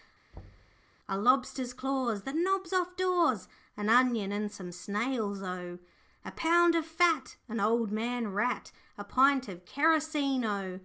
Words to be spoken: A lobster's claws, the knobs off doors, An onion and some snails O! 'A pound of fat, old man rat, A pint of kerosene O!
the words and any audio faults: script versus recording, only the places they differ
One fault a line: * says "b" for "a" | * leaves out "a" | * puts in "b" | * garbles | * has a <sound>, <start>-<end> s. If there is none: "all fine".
* has a thud, 0.3-0.8 s
* puts in "an"